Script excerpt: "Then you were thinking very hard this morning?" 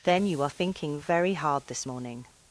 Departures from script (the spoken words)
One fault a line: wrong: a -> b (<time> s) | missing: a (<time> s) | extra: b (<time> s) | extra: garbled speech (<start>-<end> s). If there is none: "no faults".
wrong: were -> are (0.4 s)